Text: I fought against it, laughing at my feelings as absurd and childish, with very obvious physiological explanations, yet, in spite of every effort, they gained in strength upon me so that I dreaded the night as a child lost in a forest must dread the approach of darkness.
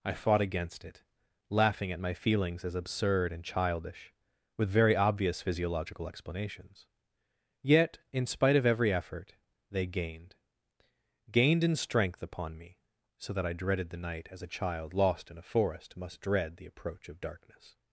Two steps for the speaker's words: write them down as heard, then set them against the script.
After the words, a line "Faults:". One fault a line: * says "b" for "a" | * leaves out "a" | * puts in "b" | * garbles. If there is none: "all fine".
I fought against it, laughing at my feelings as absurd and childish, with very obvious physiological explanations, yet, in spite of every effort, they gained gained in strength upon me so that I dreaded the night as a child lost in a forest must dread the approach of darkness.
Faults:
* puts in "gained"